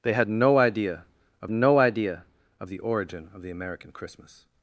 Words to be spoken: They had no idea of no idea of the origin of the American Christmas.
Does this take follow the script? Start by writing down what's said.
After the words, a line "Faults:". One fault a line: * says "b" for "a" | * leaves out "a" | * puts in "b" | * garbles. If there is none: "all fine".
They had no idea of no idea of the origin of the American Christmas.
Faults:
all fine